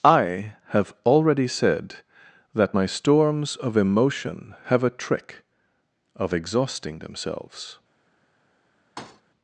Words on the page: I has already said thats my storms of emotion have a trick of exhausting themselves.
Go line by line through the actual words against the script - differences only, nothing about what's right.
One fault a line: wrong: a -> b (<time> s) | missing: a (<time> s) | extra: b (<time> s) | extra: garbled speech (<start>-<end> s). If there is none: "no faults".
wrong: has -> have (0.7 s)
wrong: thats -> that (2.5 s)